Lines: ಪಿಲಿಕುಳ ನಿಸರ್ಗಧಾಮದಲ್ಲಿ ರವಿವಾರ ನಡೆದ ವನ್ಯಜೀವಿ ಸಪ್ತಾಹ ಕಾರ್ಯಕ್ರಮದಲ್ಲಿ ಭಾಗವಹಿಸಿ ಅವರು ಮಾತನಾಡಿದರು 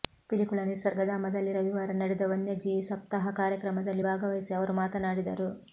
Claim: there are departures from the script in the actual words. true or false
false